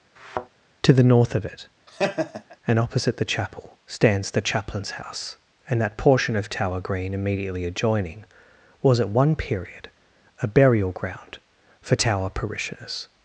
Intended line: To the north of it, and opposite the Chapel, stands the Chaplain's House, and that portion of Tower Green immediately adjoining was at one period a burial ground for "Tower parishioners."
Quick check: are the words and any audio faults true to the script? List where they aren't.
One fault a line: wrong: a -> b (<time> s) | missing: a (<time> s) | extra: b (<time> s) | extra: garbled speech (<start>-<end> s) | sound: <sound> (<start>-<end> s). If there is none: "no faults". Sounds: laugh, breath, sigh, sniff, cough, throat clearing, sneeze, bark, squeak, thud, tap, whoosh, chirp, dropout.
sound: thud (0.2-0.5 s)
sound: laugh (1.9-2.6 s)